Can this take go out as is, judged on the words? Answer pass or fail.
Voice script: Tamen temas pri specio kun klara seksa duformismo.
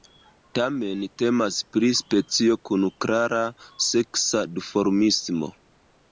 pass